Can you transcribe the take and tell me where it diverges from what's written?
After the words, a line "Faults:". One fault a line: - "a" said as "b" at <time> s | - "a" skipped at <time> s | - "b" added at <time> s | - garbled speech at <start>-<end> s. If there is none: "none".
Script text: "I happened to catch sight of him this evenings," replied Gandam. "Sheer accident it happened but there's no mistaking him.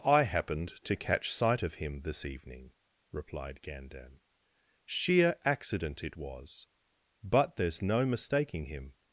"I happened to catch sight of him this evening," replied Gandam. "Sheer accident it was but there's no mistaking him.
Faults:
- "evenings" said as "evening" at 2.2 s
- "happened" said as "was" at 6.1 s